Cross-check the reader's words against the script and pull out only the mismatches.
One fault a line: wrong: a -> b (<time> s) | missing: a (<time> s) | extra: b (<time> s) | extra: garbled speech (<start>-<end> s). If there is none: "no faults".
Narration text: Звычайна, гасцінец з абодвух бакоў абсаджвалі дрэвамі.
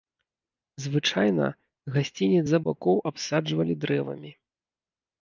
missing: абодвух (2.6 s)